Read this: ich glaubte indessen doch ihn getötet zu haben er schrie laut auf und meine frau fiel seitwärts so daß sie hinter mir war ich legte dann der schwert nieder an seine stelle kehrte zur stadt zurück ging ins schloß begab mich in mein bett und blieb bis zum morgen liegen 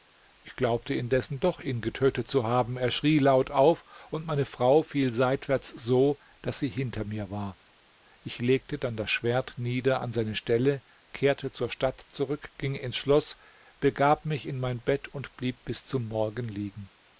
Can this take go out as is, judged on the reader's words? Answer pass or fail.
fail